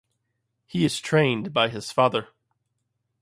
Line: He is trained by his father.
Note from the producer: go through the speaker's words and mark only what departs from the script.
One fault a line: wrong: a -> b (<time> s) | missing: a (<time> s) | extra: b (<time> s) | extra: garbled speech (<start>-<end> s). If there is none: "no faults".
no faults